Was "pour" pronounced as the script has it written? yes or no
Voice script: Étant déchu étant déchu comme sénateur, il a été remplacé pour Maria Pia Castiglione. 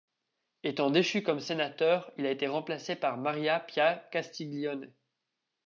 no